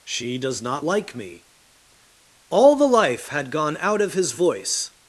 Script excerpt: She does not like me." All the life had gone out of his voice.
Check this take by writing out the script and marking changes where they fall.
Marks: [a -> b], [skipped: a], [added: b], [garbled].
She does not like me." All the life had gone out of his voice.